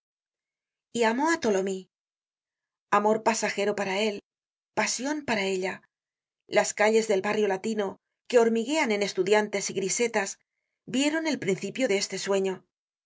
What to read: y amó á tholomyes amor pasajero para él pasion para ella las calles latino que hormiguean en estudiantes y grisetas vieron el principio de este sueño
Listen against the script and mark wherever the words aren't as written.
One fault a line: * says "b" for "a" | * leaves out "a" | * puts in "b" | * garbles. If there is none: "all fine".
* puts in "del barrio"